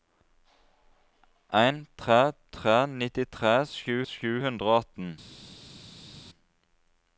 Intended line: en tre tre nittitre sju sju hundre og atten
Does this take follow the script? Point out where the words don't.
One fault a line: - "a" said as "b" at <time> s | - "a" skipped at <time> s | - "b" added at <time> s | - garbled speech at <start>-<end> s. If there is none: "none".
none